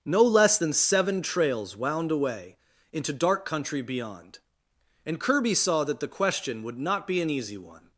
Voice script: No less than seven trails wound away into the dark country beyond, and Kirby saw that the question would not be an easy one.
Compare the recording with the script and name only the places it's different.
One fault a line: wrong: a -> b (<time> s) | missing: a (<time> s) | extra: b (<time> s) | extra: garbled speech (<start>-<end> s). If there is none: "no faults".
missing: the (3.1 s)